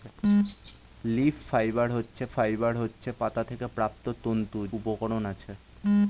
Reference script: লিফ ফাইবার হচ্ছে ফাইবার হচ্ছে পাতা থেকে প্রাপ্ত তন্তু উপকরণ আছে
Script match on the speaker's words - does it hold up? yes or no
yes